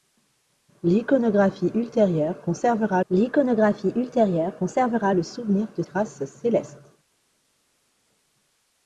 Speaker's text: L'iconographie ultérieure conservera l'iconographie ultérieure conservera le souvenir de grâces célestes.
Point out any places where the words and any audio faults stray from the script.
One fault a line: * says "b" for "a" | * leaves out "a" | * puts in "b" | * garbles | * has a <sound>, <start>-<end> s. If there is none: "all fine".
all fine